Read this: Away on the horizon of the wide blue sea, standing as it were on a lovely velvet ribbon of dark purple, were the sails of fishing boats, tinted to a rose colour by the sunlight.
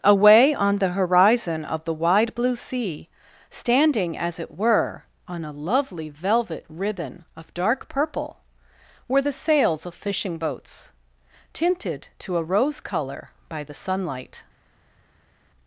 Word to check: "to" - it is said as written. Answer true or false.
true